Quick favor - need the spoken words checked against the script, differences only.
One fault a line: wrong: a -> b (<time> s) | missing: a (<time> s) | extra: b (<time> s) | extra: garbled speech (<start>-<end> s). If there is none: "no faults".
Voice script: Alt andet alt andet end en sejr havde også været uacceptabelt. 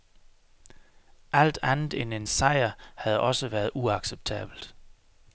missing: alt andet (1.9 s)